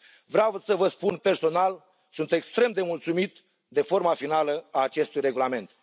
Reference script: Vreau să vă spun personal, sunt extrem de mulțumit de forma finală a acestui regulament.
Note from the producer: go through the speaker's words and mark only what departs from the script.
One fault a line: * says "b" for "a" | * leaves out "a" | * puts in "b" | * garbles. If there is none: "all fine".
all fine